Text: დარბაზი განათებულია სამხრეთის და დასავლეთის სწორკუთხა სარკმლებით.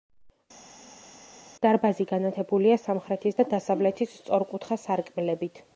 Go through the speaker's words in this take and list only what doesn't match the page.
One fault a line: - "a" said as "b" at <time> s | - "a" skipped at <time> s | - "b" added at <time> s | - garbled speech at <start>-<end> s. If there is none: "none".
none